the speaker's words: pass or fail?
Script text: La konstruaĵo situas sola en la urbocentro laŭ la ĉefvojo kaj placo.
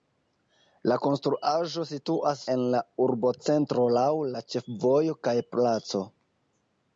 fail